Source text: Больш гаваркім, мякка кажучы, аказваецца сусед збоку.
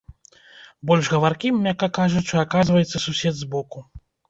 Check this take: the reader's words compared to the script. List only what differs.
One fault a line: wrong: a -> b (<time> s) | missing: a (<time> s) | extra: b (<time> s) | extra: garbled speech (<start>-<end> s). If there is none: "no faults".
no faults